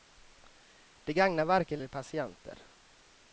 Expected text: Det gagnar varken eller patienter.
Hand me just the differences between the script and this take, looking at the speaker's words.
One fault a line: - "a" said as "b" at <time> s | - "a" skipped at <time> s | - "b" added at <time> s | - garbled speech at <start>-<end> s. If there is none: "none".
none